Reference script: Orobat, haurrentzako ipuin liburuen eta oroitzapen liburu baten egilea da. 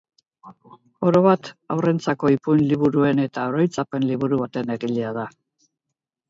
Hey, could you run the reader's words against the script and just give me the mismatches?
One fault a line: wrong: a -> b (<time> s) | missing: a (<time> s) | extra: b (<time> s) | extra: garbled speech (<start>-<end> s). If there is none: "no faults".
no faults